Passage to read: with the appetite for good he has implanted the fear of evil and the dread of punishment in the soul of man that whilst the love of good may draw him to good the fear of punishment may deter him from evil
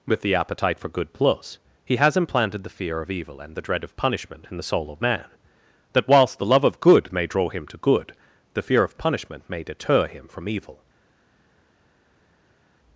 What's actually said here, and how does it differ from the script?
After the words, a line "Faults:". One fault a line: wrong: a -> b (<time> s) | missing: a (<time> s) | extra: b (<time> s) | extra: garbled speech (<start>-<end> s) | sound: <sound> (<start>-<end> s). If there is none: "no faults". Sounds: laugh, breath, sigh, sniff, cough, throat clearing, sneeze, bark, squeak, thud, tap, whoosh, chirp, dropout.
with the appetite for good plus he has implanted the fear of evil and the dread of punishment in the soul of man that whilst the love of good may draw him to good the fear of punishment may deter him from evil
Faults:
extra: plus (1.1 s)